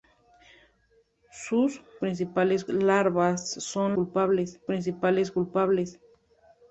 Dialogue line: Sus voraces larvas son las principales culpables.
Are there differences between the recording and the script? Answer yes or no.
yes